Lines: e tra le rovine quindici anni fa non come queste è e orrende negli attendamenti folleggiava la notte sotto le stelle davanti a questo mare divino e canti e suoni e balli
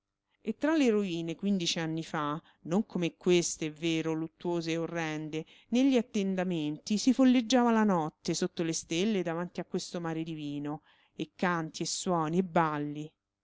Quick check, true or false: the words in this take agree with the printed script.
false